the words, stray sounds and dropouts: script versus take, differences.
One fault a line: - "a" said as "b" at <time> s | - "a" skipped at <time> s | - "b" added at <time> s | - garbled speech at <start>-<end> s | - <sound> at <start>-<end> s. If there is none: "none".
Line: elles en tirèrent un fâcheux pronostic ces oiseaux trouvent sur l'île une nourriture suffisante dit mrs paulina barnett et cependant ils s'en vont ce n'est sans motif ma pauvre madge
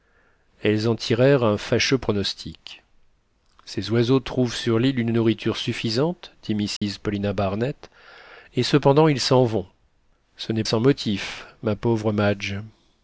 - dropout at 6.8-6.8 s